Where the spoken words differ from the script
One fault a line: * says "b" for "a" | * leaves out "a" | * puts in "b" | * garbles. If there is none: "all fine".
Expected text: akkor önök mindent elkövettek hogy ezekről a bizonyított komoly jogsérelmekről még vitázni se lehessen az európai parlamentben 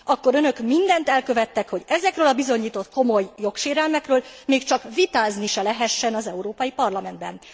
* puts in "csak"